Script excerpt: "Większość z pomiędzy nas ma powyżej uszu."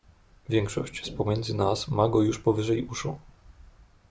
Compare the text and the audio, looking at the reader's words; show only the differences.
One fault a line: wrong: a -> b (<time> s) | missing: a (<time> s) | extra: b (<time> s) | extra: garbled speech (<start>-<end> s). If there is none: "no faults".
extra: go już (2.1 s)